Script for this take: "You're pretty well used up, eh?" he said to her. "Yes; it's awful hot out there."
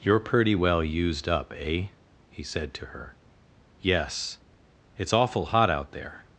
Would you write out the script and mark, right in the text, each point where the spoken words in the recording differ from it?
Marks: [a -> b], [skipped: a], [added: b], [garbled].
"You're pretty well used up, eh?" he said to her. "Yes; it's awful hot out there."